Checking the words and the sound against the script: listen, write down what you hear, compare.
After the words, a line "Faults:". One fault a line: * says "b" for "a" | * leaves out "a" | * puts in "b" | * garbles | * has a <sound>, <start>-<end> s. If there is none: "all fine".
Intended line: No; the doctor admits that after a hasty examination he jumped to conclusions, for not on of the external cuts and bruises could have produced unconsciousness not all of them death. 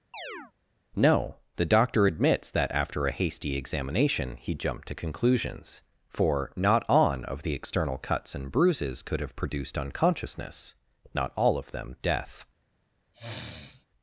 No; the doctor admits that after a hasty examination he jumped to conclusions, for not on of the external cuts and bruises could have produced unconsciousness not all of them death.
Faults:
* has a chirp, 0.1-0.5 s
* has a sniff, 13.1-13.9 s